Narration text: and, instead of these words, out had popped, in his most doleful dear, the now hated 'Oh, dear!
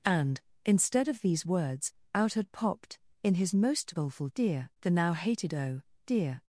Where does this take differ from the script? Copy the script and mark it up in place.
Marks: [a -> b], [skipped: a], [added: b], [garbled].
and, instead of these words, out had popped, in his most doleful dear, the now hated 'Oh, dear!